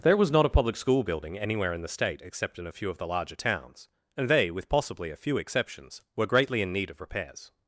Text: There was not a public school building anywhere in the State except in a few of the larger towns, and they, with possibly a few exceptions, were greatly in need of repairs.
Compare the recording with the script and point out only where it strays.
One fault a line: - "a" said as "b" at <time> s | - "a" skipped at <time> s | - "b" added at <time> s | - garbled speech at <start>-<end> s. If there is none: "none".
none